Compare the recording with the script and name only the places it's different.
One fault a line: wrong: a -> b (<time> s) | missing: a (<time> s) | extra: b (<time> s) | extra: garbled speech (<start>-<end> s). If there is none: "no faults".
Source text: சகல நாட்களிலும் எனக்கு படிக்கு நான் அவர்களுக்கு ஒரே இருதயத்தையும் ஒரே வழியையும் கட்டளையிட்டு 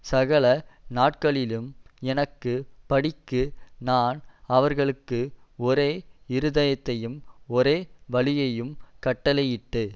no faults